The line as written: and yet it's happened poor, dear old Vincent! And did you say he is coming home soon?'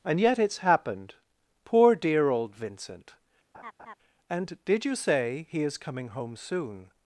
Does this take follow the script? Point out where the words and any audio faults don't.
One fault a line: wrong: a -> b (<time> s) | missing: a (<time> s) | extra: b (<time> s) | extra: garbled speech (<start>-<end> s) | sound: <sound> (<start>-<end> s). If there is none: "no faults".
sound: laugh (3.5-4.0 s)